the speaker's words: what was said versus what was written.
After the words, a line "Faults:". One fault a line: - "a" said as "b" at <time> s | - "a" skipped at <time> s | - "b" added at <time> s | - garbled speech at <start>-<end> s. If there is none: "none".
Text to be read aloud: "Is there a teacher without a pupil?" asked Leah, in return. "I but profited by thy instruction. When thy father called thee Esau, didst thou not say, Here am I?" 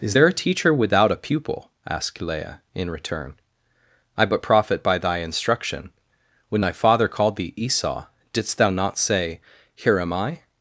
"Is there a teacher without a pupil?" asked Leah, in return. "I but profit by thy instruction. When thy father called thee Esau, didst thou not say, Here am I?"
Faults:
- "profited" said as "profit" at 4.4 s